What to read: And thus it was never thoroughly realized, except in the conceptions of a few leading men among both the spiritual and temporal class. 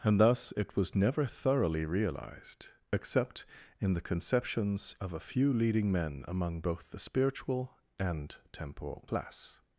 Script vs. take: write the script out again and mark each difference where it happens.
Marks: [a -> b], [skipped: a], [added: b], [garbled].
And thus it was never thoroughly realized, except in the conceptions of a few leading men among both the spiritual and temporal class.